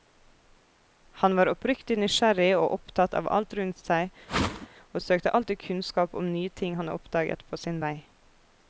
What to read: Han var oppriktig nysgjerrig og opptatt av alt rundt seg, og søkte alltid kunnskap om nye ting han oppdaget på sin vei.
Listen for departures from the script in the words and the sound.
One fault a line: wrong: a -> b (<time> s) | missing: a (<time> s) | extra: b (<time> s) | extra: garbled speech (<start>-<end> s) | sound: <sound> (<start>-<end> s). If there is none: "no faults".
sound: whoosh (4.3-4.7 s)